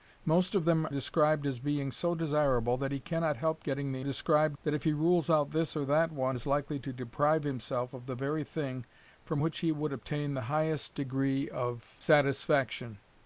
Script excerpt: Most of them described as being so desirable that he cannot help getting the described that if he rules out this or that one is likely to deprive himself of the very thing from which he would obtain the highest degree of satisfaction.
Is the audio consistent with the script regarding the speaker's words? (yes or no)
yes